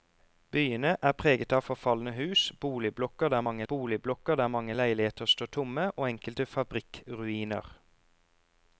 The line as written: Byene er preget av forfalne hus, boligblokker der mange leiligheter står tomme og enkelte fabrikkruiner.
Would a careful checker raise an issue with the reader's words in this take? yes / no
yes